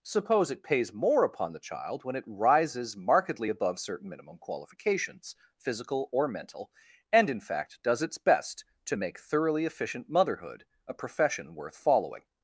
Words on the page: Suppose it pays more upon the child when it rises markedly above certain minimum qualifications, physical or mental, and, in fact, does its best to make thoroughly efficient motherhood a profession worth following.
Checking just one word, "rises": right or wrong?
right